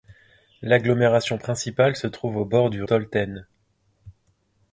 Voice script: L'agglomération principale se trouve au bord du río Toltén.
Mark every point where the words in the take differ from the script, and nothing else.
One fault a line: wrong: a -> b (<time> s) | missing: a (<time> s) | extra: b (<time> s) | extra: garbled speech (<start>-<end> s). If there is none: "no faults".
missing: río (2.8 s)